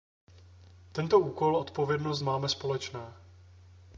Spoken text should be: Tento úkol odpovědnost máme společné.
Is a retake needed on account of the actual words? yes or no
no